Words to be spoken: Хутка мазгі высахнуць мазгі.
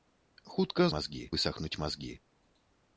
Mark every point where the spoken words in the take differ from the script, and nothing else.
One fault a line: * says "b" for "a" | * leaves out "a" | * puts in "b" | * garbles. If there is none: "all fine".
all fine